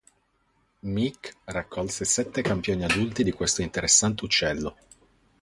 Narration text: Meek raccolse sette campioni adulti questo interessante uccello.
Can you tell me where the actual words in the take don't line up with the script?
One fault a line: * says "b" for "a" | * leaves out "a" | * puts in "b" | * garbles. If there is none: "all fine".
* puts in "di"